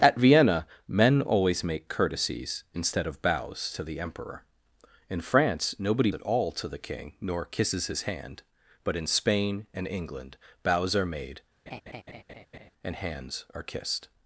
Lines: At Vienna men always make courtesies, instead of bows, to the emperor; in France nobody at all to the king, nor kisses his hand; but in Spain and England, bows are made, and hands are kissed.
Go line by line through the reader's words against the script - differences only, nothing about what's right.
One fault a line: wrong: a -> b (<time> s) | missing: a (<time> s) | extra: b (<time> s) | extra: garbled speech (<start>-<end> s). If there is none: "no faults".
no faults